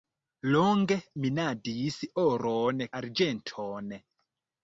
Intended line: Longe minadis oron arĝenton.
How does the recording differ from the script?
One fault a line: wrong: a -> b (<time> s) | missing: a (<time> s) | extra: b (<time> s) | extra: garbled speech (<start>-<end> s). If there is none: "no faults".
no faults